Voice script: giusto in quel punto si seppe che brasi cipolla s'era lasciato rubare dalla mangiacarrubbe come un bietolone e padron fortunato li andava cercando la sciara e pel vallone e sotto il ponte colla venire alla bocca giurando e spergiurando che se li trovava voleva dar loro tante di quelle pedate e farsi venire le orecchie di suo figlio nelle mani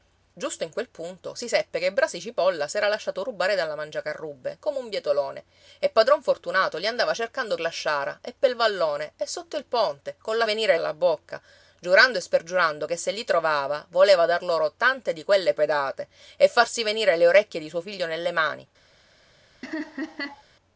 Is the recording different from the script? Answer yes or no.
no